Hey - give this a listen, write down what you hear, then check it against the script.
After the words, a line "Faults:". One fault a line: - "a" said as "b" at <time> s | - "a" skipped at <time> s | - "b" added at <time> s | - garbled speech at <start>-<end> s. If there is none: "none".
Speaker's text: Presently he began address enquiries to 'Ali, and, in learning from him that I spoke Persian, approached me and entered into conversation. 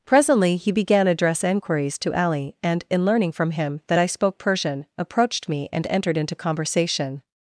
Presently he began address enquiries to 'Ali, and, in learning from him that I spoke Persian, approached me and entered into conversation.
Faults:
none